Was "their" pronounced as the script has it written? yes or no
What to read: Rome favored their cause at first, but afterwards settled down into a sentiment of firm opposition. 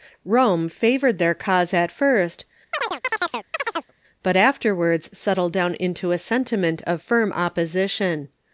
yes